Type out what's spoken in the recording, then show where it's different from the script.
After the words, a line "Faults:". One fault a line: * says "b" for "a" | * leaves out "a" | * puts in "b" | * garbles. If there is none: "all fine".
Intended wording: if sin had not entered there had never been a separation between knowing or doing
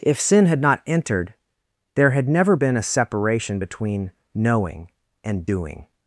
if sin had not entered there had never been a separation between knowing and doing
Faults:
* says "and" for "or"